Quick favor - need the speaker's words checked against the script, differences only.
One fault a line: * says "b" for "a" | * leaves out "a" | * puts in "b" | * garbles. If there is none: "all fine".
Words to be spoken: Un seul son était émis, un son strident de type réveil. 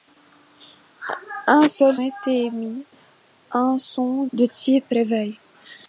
* leaves out "son"
* leaves out "strident"